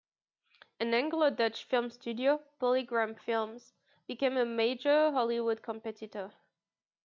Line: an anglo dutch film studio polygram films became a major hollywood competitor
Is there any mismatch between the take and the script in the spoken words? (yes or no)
no